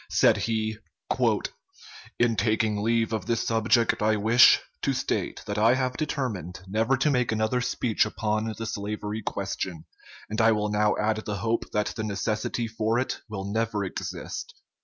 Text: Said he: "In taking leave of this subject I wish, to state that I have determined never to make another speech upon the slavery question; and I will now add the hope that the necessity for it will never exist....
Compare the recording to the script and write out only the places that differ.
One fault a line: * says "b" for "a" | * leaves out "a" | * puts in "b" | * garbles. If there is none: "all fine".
all fine